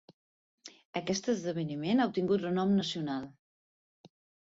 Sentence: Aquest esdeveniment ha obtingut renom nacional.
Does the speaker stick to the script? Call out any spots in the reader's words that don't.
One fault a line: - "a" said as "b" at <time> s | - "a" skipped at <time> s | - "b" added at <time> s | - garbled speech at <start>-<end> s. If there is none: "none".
none